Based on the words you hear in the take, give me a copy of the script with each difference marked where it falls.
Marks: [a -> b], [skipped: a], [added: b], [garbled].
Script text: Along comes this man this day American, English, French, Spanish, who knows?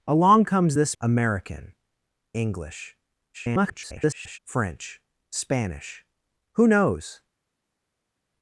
Along comes this [skipped: man this day] American, English, [garbled] French, Spanish, who knows?